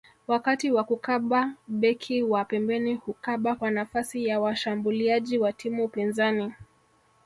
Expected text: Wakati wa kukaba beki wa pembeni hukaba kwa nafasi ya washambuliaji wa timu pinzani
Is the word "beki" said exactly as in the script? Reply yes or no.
yes